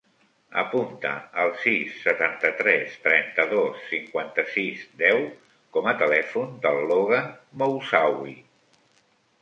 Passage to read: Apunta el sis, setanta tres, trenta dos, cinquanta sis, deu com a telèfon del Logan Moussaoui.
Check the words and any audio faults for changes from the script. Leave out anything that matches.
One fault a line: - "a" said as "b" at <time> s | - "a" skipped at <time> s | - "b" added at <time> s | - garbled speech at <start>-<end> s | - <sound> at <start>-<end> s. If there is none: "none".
none